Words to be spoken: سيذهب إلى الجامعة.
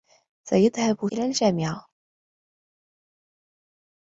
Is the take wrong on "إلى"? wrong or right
right